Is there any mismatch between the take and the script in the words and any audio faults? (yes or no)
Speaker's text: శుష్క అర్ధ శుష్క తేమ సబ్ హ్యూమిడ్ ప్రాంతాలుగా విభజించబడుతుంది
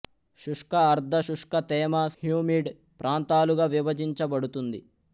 yes